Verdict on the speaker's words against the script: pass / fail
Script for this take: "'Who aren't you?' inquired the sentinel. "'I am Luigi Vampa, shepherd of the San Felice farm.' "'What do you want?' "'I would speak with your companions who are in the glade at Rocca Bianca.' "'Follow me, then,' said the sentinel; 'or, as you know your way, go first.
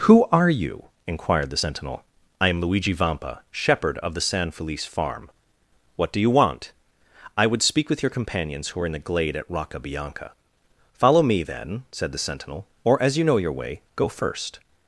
fail